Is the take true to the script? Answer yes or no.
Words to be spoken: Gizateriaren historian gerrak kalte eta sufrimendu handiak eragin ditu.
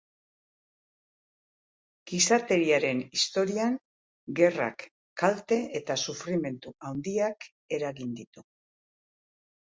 yes